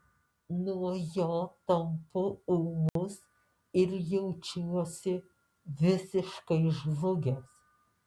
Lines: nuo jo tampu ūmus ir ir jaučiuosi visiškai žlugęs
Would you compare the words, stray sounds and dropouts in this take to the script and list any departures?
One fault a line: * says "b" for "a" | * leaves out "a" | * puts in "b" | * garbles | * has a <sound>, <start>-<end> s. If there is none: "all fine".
* has a dropout, 2.9-3.0 s
* leaves out "ir"